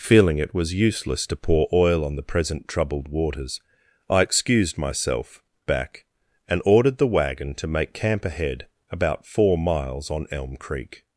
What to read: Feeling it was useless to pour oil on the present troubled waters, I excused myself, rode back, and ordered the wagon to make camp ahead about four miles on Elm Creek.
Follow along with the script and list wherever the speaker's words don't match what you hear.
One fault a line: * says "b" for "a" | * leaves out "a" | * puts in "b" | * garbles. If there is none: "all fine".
* leaves out "rode"